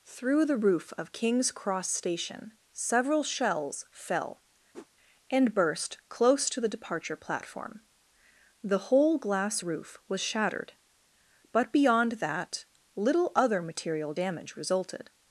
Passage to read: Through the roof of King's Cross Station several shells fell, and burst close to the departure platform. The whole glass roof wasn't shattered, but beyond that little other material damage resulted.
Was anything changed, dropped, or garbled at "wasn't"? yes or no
yes